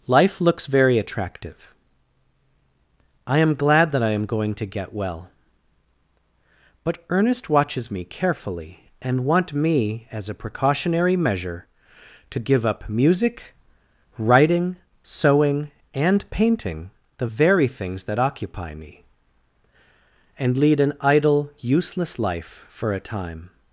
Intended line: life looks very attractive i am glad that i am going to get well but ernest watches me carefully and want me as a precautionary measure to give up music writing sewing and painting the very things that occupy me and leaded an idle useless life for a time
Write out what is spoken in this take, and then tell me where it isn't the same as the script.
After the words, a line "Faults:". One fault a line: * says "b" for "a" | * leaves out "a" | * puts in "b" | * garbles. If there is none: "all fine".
life looks very attractive i am glad that i am going to get well but ernest watches me carefully and want me as a precautionary measure to give up music writing sewing and painting the very things that occupy me and lead an idle useless life for a time
Faults:
* says "lead" for "leaded"